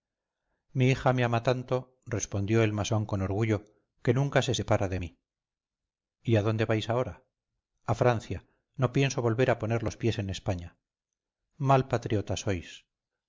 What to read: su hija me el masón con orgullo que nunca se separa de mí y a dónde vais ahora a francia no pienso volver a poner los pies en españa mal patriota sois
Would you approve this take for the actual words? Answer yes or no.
no